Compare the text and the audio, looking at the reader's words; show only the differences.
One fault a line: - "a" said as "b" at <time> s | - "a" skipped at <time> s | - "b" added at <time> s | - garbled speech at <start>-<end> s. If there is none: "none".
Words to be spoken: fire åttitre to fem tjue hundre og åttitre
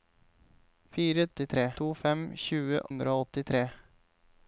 none